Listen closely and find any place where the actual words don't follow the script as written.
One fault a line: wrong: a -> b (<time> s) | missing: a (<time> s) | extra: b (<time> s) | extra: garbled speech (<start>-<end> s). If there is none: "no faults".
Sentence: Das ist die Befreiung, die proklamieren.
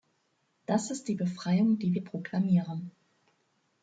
extra: wir (1.9 s)